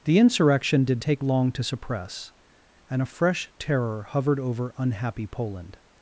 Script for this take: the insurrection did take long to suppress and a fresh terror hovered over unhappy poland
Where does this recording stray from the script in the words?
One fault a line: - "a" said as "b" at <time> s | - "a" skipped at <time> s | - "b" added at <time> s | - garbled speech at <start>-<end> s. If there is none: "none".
none